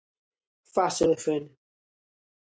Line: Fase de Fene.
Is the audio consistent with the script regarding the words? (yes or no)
yes